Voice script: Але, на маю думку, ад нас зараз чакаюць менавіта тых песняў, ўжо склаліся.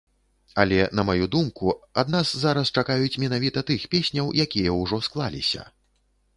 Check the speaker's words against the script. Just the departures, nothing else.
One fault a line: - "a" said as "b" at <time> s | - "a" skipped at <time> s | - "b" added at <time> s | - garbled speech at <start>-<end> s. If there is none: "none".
- "якія" added at 4.5 s